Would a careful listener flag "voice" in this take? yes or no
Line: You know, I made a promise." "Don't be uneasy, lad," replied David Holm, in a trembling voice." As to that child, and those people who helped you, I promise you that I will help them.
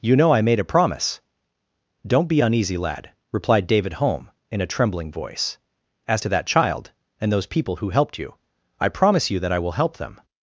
no